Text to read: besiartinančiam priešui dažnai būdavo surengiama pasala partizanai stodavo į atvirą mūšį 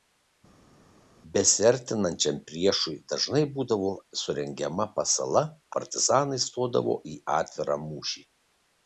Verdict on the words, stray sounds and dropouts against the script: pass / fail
pass